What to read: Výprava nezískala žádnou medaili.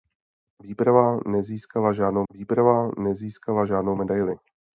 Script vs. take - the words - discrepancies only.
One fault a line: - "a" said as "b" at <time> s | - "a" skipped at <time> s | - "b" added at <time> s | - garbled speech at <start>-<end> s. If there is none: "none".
- "výprava nezískala žádnou" added at 2.3 s